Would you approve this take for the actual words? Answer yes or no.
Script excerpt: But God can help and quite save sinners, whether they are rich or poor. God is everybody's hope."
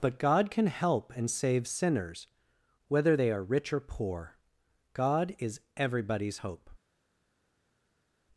no